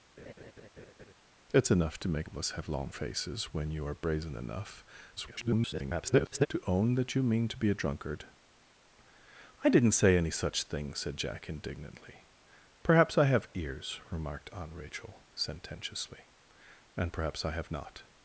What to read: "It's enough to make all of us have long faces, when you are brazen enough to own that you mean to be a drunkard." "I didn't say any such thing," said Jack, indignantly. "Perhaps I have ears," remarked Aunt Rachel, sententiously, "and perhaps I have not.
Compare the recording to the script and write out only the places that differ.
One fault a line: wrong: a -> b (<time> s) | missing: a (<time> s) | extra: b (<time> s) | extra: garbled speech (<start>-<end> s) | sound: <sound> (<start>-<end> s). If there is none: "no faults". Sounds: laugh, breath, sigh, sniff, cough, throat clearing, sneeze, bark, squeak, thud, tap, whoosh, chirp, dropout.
sound: laugh (0.2-1.1 s)
missing: all (2.3 s)
extra: garbled speech (5.2-6.5 s)